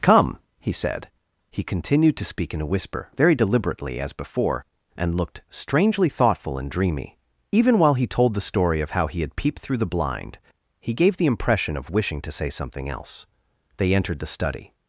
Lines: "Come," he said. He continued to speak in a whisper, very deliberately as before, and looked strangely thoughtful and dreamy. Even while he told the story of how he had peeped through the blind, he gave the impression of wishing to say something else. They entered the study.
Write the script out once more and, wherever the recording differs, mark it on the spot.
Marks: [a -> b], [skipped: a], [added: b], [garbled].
"Come," he said. He continued to speak in a whisper, very deliberately as before, and looked strangely thoughtful and dreamy. Even while he told the story of how he had peeped through the blind, he gave the impression of wishing to say something else. They entered the study.